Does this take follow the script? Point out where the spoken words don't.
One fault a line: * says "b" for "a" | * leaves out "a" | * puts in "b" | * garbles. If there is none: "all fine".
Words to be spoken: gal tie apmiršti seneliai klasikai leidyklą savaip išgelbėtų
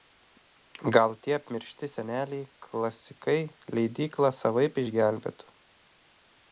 all fine